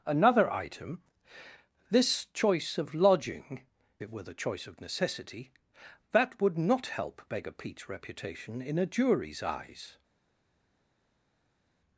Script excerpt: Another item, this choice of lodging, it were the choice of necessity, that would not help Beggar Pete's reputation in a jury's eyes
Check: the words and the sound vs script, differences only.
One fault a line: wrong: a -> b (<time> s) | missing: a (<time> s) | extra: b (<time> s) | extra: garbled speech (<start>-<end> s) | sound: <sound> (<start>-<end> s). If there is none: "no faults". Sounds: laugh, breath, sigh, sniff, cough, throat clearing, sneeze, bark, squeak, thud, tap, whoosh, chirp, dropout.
no faults